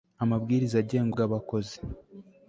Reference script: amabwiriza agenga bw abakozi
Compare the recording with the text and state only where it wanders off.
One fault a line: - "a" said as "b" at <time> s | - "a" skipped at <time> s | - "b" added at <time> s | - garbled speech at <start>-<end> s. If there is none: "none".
none